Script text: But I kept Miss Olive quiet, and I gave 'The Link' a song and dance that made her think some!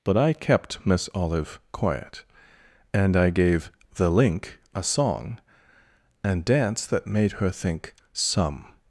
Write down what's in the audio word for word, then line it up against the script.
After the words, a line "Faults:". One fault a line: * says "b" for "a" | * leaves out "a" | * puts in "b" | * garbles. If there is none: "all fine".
But I kept Miss Olive quiet, and I gave 'The Link' a song and dance that made her think some!
Faults:
all fine